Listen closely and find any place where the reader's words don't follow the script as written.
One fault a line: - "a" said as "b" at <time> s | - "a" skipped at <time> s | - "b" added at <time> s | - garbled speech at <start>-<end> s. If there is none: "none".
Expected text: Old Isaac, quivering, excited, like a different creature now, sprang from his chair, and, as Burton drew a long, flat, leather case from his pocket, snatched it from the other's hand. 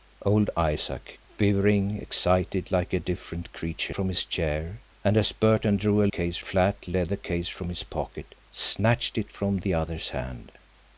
- "now sprang" skipped at 3.9 s
- "long" said as "case" at 6.1 s